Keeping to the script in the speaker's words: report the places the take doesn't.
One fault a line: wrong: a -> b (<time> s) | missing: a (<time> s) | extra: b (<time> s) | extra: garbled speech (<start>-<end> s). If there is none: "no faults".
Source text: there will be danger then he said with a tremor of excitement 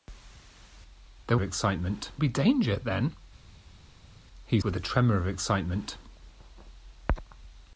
wrong: will -> excitement (1.4 s)
missing: said (4.6 s)